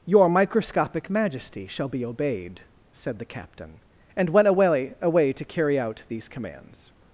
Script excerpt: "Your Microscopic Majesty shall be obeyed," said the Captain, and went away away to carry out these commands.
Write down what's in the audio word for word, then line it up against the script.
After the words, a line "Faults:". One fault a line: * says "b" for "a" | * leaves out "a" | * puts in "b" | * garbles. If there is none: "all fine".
"Your Microscopic Majesty shall be obeyed," said the Captain, and went away away to carry out these commands.
Faults:
all fine